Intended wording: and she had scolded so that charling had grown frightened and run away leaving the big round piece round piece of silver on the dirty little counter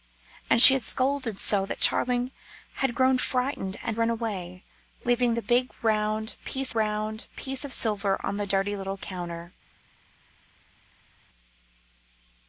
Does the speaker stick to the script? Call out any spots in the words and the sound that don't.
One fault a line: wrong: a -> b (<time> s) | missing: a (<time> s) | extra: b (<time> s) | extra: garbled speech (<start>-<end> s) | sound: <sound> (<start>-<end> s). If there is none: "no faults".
no faults